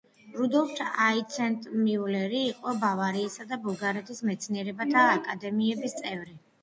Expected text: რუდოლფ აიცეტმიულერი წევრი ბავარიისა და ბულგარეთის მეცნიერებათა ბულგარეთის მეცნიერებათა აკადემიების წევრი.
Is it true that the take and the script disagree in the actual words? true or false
true